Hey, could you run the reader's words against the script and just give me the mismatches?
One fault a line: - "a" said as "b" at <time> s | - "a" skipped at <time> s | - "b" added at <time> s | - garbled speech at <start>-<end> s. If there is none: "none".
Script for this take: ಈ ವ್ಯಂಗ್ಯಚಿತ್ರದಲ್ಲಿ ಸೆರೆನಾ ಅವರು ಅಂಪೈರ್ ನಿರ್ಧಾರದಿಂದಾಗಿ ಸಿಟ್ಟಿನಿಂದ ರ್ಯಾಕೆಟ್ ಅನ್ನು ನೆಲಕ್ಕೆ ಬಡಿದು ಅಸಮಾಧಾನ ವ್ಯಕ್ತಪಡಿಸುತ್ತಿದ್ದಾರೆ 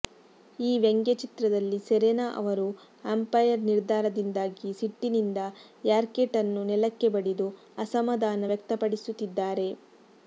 none